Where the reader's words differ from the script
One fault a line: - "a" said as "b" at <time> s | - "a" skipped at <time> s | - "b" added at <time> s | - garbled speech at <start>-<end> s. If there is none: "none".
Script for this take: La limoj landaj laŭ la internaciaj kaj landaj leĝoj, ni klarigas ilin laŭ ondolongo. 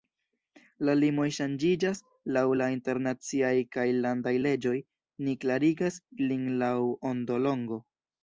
- "landaj" said as "ŝanĝiĝas" at 1.4 s